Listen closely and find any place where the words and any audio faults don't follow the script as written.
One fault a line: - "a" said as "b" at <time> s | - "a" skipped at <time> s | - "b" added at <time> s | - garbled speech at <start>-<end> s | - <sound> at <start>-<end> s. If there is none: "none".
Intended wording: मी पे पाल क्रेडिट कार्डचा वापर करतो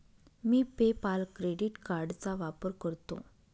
none